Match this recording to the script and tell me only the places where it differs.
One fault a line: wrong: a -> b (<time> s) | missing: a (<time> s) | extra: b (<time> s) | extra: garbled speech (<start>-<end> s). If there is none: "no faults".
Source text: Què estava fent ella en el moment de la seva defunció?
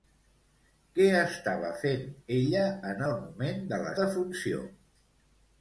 missing: seva (3.9 s)